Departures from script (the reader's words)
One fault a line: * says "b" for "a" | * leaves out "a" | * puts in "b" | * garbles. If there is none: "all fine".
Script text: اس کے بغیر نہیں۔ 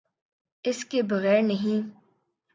all fine